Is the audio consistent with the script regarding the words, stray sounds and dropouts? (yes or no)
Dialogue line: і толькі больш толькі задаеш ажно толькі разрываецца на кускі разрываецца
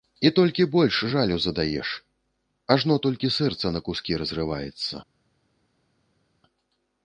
no